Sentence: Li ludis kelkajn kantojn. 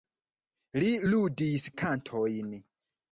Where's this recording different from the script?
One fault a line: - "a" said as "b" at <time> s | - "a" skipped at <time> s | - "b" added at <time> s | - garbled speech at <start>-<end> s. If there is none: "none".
- "kelkajn" skipped at 1.7 s